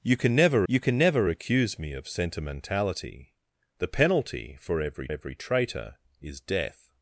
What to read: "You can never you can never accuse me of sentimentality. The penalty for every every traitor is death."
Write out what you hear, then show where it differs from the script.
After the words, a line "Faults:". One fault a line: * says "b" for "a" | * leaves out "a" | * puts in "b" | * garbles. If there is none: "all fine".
"You can never you can never accuse me of sentimentality. The penalty for every every traitor is death."
Faults:
all fine